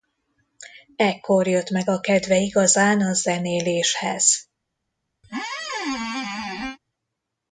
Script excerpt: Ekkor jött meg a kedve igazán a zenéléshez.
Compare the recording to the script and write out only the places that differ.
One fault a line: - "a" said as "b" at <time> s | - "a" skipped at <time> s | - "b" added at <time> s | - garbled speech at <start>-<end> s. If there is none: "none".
none